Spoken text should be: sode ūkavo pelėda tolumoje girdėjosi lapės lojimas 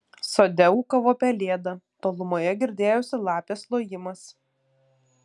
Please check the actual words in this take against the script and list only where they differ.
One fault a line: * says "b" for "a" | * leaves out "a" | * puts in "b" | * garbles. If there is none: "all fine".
all fine